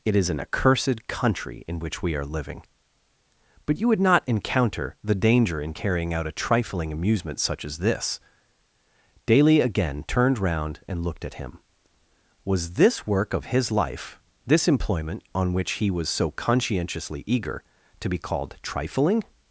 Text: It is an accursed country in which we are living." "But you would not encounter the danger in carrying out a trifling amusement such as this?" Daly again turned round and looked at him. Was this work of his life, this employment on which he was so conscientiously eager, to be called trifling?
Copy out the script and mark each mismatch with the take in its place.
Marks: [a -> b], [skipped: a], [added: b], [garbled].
It is an accursed country in which we are living." "But you would not encounter the danger in carrying out a trifling amusement such as this?" Daly again turned round and looked at him. Was this work of his life, this employment on which he was so conscientiously eager, to be called trifling?